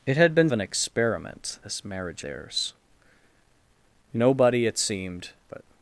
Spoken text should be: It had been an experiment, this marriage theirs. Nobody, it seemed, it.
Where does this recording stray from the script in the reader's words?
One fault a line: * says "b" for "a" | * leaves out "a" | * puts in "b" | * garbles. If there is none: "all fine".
all fine